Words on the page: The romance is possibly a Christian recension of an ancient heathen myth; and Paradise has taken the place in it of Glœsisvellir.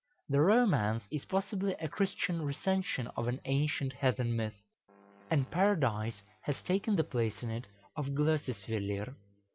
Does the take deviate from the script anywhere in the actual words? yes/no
no